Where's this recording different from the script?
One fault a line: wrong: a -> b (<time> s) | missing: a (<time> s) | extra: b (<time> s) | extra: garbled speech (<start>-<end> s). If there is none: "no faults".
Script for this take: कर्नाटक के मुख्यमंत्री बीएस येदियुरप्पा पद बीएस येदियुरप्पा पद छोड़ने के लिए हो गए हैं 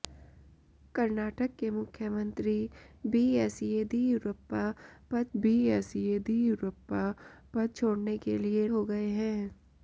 no faults